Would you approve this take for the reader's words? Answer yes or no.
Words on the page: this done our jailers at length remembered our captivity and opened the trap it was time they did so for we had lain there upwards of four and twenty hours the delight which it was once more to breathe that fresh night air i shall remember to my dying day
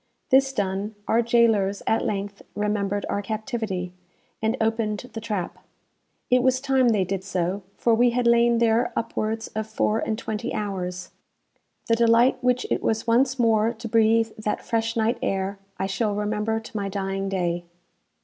yes